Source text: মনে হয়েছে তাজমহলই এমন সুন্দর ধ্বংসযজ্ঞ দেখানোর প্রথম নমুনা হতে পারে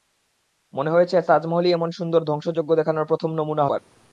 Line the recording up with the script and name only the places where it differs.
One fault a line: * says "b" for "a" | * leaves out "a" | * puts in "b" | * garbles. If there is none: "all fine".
* leaves out "হতে"